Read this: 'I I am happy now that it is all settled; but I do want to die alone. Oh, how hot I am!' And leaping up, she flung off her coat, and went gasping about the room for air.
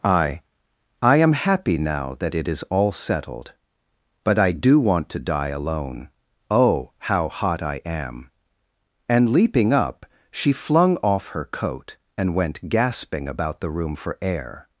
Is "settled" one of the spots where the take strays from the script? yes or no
no